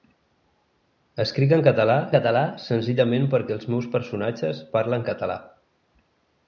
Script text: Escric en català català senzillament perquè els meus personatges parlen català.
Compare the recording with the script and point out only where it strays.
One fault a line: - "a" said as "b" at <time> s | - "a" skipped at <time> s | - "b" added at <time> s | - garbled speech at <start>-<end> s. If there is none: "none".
none